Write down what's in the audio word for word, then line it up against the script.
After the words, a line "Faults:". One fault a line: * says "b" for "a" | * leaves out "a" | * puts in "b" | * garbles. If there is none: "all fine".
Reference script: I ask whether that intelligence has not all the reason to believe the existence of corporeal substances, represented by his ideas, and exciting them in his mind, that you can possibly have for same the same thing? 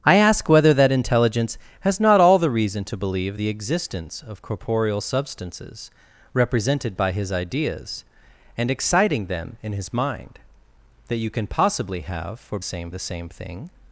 I ask whether that intelligence has not all the reason to believe the existence of corporeal substances, represented by his ideas, and exciting them in his mind, that you can possibly have for same the same thing?
Faults:
all fine